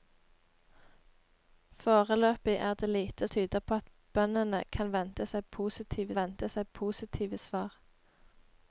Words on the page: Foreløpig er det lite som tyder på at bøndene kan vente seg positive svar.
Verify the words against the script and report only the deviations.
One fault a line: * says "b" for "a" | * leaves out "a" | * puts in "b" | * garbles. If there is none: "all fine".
* leaves out "som"
* puts in "vente seg positive"